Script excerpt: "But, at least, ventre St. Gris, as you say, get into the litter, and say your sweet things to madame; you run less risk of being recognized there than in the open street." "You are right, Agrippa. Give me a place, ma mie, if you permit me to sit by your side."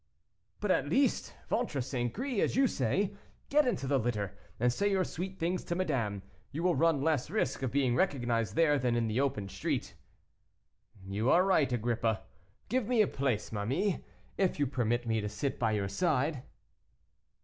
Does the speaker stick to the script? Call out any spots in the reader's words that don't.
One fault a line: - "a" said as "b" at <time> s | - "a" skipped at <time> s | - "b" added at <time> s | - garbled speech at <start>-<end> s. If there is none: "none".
- "will" added at 6.6 s